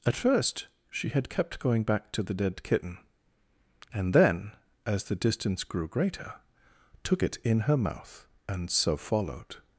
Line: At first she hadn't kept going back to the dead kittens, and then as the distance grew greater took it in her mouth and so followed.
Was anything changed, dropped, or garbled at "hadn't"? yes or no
yes